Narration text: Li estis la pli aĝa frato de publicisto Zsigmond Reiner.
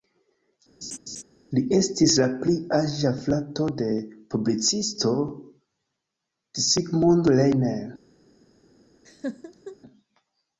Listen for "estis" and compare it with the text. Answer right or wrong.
right